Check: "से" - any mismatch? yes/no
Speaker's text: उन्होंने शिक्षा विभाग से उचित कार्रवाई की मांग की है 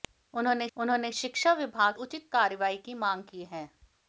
yes